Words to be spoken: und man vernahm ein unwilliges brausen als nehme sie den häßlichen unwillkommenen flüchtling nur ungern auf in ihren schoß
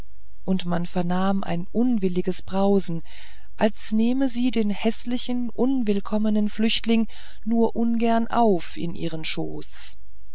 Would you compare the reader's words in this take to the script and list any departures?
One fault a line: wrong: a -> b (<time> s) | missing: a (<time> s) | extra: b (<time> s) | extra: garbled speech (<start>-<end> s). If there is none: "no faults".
no faults